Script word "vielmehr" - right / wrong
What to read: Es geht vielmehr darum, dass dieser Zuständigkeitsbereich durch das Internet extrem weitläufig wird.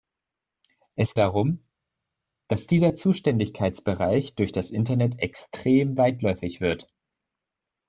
wrong